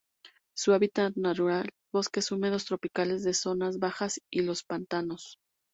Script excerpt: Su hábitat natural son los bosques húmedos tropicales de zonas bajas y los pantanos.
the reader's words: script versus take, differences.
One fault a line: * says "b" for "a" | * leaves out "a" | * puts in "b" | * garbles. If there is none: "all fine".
* leaves out "son los"